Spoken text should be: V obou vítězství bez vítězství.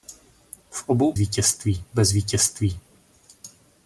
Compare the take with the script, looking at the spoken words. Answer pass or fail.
pass